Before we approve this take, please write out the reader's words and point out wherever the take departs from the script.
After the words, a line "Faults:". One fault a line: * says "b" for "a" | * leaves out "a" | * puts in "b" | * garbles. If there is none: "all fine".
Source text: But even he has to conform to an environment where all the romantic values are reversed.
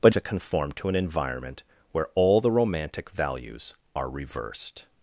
But to conform to an environment where all the romantic values are reversed.
Faults:
* leaves out "even he has"